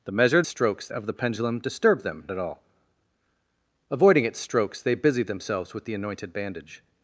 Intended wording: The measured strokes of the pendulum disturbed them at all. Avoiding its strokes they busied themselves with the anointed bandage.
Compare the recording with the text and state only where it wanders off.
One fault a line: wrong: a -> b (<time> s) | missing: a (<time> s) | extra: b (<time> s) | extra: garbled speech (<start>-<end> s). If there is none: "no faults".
no faults